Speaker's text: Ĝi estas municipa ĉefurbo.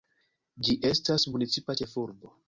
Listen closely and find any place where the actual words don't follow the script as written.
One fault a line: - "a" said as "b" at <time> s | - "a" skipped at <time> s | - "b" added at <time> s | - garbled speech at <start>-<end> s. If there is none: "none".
none